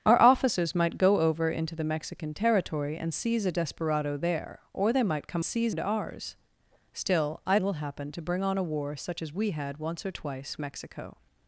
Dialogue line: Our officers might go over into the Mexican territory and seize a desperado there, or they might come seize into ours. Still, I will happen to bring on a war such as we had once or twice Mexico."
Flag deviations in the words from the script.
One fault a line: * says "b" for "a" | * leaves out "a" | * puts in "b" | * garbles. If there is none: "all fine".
all fine